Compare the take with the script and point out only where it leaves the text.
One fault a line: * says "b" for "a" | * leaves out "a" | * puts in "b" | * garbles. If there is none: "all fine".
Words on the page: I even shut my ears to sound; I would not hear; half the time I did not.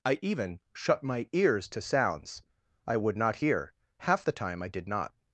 * says "sounds" for "sound"